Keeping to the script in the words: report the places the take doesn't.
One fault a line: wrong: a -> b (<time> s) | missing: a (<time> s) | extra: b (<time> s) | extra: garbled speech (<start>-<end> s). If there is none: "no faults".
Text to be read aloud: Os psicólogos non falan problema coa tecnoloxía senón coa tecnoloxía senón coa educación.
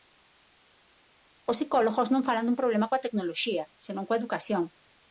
extra: dun (2.5 s)
missing: tecnoloxía senón coa (4.2 s)